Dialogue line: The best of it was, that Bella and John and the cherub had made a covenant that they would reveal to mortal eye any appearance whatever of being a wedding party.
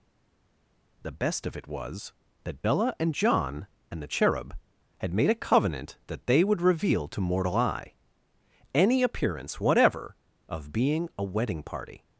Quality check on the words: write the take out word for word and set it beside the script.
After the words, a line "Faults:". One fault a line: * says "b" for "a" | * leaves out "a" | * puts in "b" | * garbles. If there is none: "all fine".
The best of it was, that Bella and John and the cherub had made a covenant that they would reveal to mortal eye any appearance whatever of being a wedding party.
Faults:
all fine